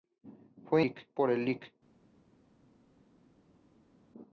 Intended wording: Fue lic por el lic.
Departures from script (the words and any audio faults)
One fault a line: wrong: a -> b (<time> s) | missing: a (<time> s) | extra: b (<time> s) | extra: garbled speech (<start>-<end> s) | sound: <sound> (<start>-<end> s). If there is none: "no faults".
no faults